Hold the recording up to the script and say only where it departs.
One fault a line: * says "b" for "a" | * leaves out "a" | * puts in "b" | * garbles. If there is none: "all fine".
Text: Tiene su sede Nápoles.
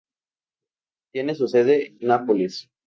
all fine